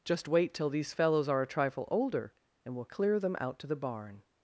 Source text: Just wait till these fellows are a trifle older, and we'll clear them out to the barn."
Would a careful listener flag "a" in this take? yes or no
no